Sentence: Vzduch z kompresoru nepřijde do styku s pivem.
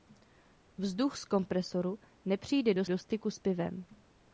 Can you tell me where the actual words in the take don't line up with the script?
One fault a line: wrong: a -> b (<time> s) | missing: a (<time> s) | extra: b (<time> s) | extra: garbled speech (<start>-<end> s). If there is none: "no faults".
extra: do (2.8 s)